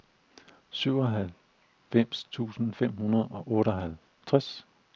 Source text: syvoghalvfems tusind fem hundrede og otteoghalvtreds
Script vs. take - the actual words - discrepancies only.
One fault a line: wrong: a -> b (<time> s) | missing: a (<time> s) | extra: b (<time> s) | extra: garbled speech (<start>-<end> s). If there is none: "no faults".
no faults